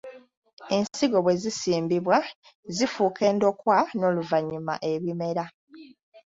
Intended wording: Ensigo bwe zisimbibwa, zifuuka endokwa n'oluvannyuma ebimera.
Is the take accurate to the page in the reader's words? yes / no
yes